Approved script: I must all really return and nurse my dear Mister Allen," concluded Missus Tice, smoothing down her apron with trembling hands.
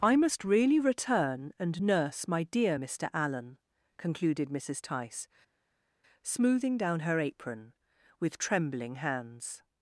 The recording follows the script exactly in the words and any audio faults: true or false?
false